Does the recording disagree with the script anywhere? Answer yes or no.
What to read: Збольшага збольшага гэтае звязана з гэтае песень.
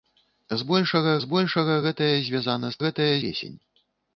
no